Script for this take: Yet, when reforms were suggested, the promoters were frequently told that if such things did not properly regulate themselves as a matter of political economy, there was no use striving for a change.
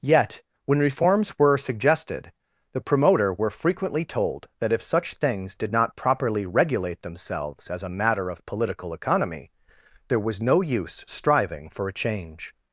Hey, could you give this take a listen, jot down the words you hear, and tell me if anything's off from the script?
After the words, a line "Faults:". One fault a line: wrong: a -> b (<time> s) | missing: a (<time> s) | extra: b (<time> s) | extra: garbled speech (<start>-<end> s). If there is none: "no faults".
Yet, when reforms were suggested, the promoter were frequently told that if such things did not properly regulate themselves as a matter of political economy, there was no use striving for a change.
Faults:
wrong: promoters -> promoter (2.8 s)